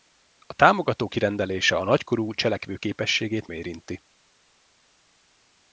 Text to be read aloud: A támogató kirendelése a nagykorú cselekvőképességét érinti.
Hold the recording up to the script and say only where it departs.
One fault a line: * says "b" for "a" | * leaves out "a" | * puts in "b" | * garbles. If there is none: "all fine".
all fine